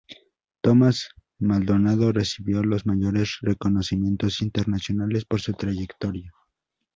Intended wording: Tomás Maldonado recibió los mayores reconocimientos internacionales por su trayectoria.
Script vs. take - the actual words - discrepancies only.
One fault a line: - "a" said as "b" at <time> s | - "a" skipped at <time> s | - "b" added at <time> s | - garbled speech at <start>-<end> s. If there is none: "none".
none